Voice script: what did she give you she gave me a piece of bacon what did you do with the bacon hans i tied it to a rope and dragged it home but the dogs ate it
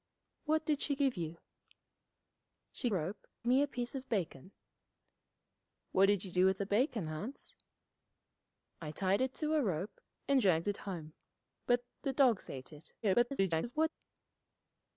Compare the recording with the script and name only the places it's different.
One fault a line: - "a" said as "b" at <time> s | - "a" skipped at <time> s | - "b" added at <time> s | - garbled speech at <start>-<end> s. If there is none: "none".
- "gave" said as "rope" at 2.9 s
- garbled speech at 13.0-13.9 s